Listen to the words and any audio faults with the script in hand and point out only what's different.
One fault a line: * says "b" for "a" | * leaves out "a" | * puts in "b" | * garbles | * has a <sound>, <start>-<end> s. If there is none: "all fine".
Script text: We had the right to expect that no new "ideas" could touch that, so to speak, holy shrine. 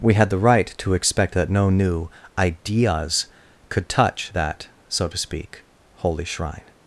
all fine